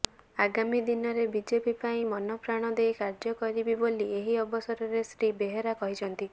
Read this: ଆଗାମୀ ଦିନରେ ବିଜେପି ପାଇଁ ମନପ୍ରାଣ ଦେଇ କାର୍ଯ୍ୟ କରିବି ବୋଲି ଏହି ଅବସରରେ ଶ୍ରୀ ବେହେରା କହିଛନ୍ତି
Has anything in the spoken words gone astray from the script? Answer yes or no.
no